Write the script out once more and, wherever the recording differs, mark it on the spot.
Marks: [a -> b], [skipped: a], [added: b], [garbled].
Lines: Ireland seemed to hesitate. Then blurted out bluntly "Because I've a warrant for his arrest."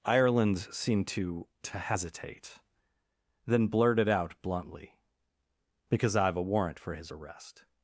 Ireland seemed to [added: to] hesitate. Then blurted out bluntly "Because I've a warrant for his arrest."